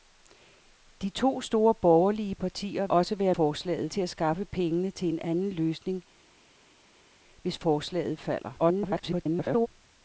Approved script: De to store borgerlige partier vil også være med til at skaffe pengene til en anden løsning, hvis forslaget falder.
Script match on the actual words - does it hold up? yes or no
no